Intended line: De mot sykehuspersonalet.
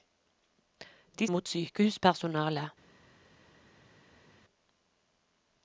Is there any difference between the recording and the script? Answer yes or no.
no